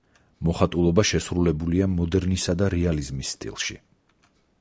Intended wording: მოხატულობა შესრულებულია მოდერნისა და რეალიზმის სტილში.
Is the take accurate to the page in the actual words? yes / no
yes